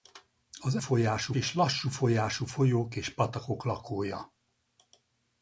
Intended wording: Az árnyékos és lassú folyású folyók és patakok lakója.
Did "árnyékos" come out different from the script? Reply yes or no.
yes